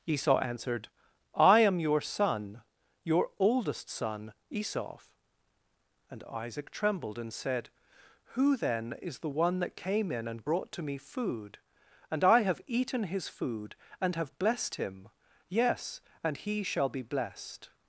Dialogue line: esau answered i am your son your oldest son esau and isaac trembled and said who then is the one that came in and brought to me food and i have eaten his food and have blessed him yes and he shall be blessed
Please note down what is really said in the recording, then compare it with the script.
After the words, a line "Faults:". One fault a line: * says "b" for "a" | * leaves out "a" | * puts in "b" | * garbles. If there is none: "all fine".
esau answered i am your son your oldest son esau and isaac trembled and said who then is the one that came in and brought to me food and i have eaten his food and have blessed him yes and he shall be blessed
Faults:
all fine